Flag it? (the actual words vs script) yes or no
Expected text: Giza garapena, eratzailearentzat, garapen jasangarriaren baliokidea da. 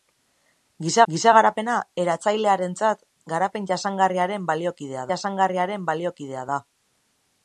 yes